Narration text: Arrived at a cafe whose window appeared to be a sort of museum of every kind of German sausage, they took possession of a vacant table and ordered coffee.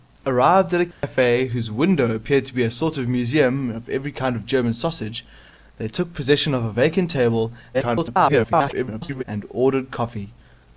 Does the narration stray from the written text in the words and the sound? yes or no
yes